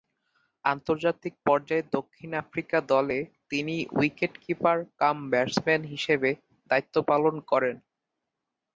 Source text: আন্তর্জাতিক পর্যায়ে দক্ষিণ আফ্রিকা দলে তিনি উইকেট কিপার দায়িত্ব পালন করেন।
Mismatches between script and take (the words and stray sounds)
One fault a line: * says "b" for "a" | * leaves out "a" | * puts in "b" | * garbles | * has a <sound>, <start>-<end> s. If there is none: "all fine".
* puts in "কাম ব্যাটসম্যান হিসেবে"